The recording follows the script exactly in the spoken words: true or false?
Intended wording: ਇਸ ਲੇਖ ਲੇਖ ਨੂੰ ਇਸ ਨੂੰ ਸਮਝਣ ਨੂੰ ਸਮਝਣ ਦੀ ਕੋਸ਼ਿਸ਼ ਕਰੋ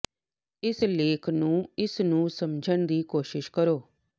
false